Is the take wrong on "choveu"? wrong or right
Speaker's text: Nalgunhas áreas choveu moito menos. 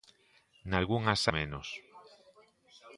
wrong